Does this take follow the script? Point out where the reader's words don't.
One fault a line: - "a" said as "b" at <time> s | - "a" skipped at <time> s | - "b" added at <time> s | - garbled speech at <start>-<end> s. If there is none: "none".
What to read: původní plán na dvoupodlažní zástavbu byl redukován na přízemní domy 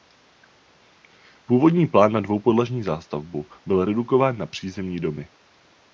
none